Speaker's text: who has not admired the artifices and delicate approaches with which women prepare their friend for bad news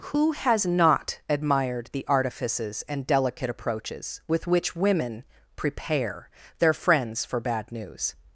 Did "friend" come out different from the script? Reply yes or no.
yes